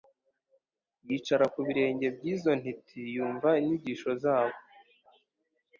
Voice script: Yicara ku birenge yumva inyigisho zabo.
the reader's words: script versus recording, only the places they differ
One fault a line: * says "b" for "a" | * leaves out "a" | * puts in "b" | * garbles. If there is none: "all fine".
* puts in "by'izo ntiti"